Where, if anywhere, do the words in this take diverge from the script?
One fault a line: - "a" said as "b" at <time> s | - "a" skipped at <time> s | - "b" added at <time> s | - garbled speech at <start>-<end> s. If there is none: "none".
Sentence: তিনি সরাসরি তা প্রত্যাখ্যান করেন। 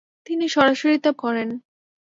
- "প্রত্যাখ্যান" skipped at 1.1 s